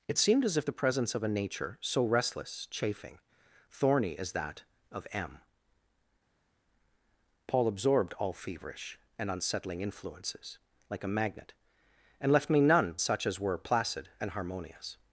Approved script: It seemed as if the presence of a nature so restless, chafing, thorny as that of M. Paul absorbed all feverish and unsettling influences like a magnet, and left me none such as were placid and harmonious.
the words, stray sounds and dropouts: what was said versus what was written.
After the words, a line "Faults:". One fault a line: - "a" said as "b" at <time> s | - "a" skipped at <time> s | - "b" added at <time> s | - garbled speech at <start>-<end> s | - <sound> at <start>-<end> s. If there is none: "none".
It seemed as if the presence of a nature so restless, chafing, thorny as that of M. Paul absorbed all feverish and unsettling influences like a magnet, and left me none such as were placid and harmonious.
Faults:
none